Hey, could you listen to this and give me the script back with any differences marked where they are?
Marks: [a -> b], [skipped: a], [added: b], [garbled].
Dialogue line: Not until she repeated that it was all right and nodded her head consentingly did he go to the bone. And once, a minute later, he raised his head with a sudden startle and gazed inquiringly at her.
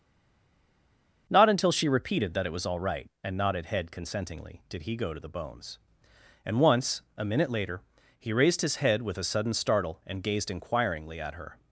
Not until she repeated that it was all right and nodded [skipped: her] head consentingly did he go to the [bone. -> bones] And once, a minute later, he raised his head with a sudden startle and gazed inquiringly at her.